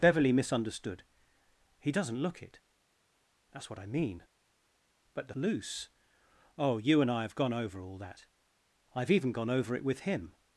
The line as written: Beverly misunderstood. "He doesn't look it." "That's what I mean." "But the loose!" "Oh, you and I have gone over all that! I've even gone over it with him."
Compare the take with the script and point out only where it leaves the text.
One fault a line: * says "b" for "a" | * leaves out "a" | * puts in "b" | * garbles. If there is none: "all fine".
all fine